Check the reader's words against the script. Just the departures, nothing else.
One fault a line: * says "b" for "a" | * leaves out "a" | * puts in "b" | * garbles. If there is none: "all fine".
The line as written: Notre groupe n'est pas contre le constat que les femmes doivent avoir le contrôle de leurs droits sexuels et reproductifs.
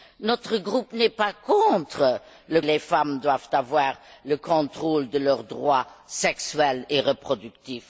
* leaves out "constat que"